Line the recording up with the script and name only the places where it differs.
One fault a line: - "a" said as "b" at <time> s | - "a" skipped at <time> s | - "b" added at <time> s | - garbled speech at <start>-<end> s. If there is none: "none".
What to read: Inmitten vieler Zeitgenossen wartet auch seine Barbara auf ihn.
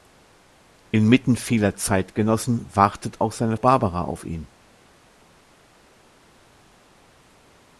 none